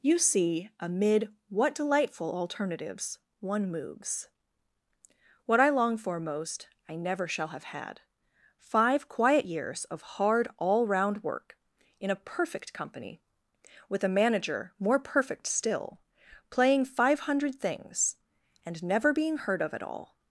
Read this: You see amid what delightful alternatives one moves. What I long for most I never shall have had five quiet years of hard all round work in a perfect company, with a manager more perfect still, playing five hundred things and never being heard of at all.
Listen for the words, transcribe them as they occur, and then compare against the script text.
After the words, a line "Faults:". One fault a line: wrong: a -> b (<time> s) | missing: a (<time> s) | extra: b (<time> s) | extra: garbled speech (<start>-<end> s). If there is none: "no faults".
You see amid what delightful alternatives one moves. What I long for most I never shall have had five quiet years of hard all round work in a perfect company, with a manager more perfect still, playing five hundred things and never being heard of at all.
Faults:
no faults